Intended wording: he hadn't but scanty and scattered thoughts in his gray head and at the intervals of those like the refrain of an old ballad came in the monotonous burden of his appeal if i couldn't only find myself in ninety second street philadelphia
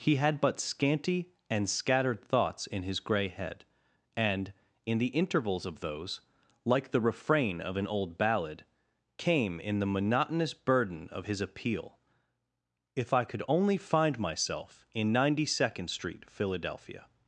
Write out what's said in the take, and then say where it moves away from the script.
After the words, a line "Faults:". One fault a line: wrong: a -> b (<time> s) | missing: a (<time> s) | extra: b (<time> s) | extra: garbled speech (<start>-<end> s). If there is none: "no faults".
he had but scanty and scattered thoughts in his gray head and in the intervals of those like the refrain of an old ballad came in the monotonous burden of his appeal if i could only find myself in ninety second street philadelphia
Faults:
wrong: hadn't -> had (0.1 s)
wrong: at -> in (4.8 s)
wrong: couldn't -> could (13.2 s)